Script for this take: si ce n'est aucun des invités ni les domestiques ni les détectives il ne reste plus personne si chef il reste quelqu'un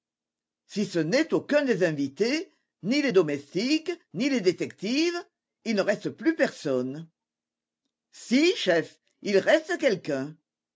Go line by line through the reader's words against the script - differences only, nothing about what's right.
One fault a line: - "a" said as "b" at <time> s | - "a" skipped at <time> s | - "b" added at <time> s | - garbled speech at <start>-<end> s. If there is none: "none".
none